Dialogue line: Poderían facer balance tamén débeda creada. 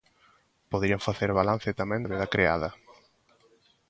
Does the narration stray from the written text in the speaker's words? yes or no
no